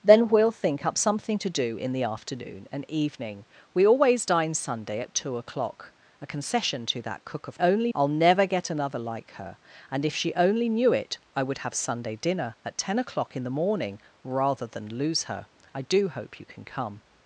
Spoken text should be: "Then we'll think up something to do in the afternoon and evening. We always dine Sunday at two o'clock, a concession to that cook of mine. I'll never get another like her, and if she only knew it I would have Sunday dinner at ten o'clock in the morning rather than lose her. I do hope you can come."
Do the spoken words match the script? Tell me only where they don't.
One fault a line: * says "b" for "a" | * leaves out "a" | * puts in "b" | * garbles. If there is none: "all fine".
* says "only" for "mine"